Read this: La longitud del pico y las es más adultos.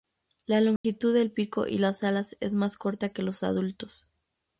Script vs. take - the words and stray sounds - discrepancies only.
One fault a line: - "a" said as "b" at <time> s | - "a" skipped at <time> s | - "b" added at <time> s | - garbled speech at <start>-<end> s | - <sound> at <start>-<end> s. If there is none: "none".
- dropout at 0.8-0.8 s
- "alas" added at 2.0 s
- "corta que los" added at 2.8 s